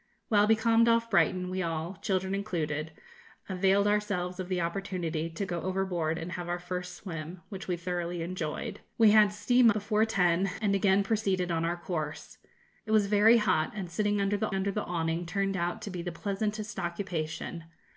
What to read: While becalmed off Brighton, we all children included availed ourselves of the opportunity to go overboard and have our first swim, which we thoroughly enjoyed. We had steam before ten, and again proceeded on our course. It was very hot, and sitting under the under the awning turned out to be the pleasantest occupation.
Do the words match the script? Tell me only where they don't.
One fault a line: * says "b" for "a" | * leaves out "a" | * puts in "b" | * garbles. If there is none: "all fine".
all fine